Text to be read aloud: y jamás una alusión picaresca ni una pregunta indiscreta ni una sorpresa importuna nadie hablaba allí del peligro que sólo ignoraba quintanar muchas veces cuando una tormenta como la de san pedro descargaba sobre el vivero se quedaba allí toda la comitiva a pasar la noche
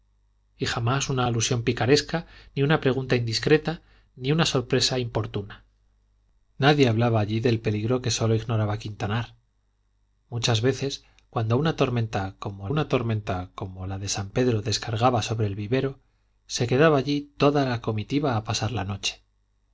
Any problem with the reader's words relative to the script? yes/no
yes